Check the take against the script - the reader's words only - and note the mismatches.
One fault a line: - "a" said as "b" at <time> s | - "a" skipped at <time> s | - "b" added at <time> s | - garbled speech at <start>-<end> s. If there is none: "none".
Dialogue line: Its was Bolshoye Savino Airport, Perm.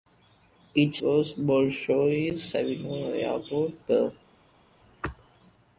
none